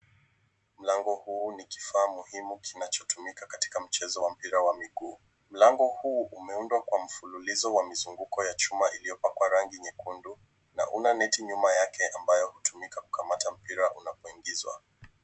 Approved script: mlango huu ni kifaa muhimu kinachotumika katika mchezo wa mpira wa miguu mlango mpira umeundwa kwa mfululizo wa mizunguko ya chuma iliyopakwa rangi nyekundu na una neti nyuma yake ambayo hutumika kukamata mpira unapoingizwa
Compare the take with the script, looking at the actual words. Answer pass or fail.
fail